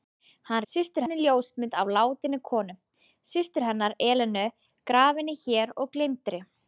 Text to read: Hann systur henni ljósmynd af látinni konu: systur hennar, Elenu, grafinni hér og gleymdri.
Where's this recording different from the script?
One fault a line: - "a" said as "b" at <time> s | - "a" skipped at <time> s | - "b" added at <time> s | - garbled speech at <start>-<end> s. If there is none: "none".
none